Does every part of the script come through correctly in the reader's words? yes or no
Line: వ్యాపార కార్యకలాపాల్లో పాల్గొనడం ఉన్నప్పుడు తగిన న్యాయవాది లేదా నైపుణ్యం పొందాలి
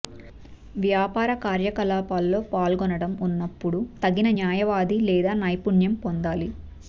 yes